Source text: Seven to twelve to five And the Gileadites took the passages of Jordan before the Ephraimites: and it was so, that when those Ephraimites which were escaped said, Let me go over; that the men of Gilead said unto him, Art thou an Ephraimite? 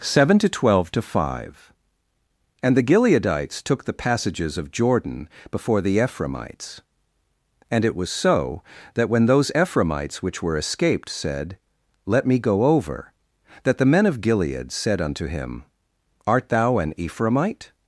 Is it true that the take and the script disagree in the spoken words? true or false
false